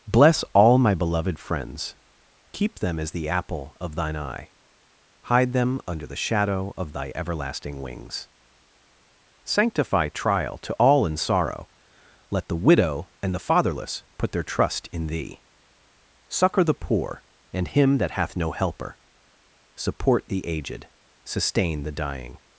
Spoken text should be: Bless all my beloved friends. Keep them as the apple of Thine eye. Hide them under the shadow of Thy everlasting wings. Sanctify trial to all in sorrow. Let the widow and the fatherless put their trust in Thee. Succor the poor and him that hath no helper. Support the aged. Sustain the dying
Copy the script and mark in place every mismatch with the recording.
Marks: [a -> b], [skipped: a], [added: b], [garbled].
Bless all my beloved friends. Keep them as the apple of Thine eye. Hide them under the shadow of Thy everlasting wings. Sanctify trial to all in sorrow. Let the widow and the fatherless put their trust in Thee. Succor the poor and him that hath no helper. Support the aged. Sustain the dying